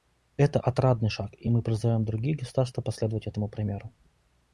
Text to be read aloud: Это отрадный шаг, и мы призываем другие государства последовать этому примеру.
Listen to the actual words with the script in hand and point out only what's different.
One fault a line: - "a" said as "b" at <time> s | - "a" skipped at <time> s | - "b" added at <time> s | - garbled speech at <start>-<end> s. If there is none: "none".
none